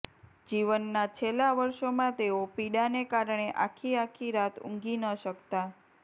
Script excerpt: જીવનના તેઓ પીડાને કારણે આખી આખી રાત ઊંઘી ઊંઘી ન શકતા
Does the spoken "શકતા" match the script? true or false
true